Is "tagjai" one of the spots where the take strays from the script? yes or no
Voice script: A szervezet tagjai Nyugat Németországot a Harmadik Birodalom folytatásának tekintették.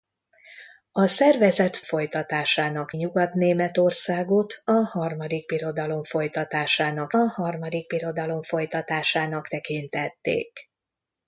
yes